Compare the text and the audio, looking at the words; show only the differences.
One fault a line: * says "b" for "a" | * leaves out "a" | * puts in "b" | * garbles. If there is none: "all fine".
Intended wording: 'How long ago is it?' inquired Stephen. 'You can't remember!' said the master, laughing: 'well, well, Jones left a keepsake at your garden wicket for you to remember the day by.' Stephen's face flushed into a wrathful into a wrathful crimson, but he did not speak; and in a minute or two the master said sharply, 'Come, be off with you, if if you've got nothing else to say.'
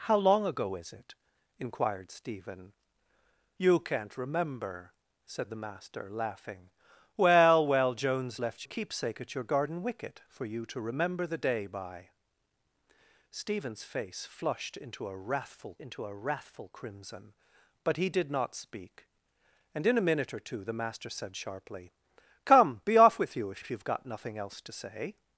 all fine